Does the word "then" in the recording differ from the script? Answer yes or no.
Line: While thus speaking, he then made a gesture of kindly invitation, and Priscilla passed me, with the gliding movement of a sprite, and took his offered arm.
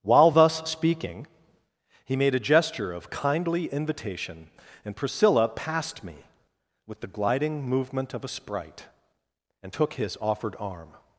yes